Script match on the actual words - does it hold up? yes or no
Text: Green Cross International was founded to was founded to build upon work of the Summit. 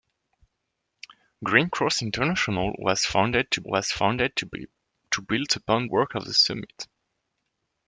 yes